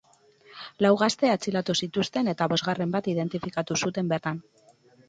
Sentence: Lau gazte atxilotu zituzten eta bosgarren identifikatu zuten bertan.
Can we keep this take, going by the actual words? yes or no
no